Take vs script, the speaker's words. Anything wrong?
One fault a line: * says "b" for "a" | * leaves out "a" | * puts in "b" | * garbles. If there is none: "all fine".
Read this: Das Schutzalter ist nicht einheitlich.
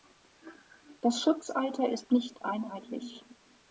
all fine